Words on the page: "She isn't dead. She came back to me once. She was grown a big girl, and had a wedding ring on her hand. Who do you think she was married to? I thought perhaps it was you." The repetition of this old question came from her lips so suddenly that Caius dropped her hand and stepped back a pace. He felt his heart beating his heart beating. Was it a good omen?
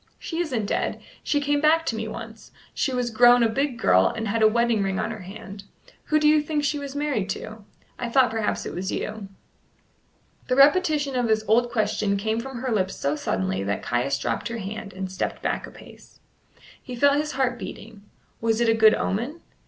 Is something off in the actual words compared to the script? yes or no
yes